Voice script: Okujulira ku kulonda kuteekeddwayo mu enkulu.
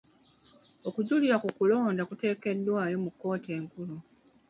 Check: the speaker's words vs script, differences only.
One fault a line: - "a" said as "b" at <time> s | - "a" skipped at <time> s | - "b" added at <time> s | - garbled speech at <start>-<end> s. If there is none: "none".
- "kkooti" added at 3.1 s